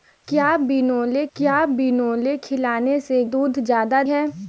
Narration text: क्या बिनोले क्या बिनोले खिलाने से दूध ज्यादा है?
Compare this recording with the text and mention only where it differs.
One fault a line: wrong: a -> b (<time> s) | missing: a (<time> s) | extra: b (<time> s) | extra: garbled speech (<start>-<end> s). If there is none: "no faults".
no faults